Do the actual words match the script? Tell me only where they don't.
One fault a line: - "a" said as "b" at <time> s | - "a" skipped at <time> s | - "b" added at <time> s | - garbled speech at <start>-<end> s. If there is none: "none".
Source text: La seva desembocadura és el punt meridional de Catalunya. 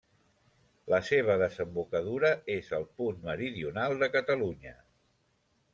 none